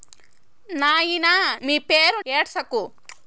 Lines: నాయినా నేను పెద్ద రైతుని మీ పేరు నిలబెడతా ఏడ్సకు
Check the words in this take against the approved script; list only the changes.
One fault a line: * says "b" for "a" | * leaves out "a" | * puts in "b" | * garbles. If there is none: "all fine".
* leaves out "నేను పెద్ద రైతుని"
* leaves out "నిలబెడతా"